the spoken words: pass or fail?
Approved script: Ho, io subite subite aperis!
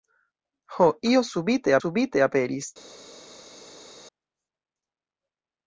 pass